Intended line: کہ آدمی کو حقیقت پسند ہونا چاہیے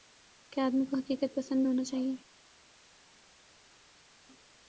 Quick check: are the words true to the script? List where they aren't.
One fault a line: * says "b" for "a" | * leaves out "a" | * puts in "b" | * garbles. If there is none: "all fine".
all fine